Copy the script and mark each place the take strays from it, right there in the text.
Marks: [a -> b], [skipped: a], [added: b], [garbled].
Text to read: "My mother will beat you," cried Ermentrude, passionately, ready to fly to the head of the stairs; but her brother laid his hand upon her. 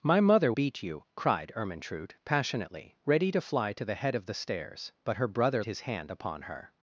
"My mother [skipped: will] beat you," cried Ermentrude, passionately, ready to fly to the head of the stairs; but her brother [skipped: laid] his hand upon her.